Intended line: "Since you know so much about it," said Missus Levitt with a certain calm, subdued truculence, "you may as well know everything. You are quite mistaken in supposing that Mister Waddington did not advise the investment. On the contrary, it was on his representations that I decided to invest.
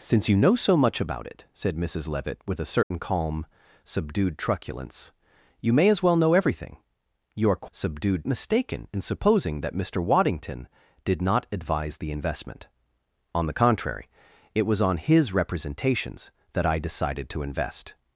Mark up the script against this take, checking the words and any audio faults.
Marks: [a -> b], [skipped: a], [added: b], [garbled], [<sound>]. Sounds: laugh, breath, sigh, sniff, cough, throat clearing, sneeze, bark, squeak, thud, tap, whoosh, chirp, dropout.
"Since you know so much about it," said Missus Levitt with a certain [dropout] calm, subdued truculence, "you may as well know everything. You are [quite -> subdued] mistaken in supposing that Mister Waddington did not advise the investment. On the contrary, it was on his representations that I decided to invest.